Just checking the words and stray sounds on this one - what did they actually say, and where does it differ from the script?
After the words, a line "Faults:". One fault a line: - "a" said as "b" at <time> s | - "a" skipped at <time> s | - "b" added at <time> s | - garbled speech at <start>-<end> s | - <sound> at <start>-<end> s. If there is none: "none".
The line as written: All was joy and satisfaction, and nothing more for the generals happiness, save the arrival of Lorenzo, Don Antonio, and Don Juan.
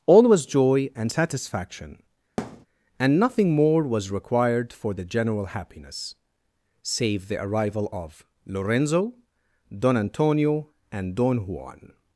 All was joy and satisfaction, and nothing more was required for the general happiness, save the arrival of Lorenzo, Don Antonio, and Don Juan.
Faults:
- thud at 2.4-2.7 s
- "was required" added at 3.8 s
- "generals" said as "general" at 5.0 s